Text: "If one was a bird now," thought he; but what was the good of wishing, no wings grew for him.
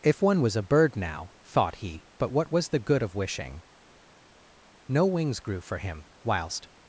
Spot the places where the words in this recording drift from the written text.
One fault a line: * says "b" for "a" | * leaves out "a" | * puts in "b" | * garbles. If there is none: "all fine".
* puts in "Whilst"